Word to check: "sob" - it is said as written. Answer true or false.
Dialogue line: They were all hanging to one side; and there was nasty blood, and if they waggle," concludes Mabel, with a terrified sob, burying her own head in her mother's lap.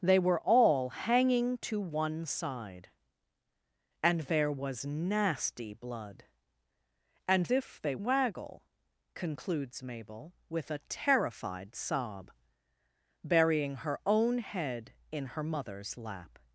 true